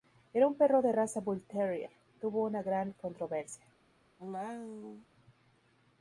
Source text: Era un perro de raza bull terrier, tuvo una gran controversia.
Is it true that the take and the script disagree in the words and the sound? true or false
true